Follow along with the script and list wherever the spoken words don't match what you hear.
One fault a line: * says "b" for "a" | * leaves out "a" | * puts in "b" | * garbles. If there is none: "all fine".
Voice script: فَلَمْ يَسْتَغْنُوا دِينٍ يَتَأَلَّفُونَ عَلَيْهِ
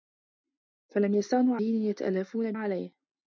all fine